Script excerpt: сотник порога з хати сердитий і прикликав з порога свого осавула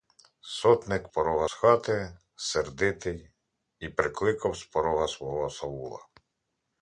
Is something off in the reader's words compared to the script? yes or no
no